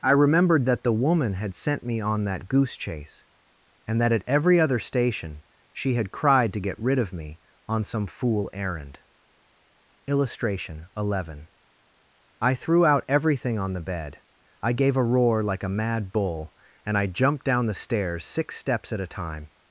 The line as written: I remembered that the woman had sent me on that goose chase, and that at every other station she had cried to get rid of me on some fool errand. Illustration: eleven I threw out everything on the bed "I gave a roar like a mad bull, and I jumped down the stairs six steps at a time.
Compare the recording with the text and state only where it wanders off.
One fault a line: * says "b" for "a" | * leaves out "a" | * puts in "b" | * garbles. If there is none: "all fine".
all fine